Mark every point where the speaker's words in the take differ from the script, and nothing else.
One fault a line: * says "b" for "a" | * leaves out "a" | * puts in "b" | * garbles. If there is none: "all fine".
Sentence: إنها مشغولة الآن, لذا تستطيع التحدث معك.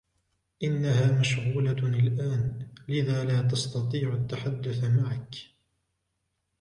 * puts in "لا"